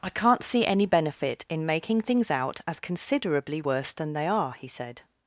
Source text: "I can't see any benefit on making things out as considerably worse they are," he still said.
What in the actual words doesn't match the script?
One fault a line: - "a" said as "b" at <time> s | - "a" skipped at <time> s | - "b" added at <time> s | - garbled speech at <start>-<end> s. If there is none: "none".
- "on" said as "in" at 1.5 s
- "than" added at 3.9 s
- "still" skipped at 4.7 s